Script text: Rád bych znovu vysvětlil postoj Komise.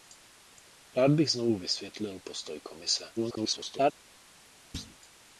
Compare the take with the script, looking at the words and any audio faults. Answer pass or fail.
fail